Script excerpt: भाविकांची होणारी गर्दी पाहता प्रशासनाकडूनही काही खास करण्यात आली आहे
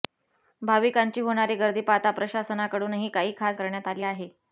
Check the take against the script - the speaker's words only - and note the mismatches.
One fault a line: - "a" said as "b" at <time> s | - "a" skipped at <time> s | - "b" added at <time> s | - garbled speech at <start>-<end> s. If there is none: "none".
none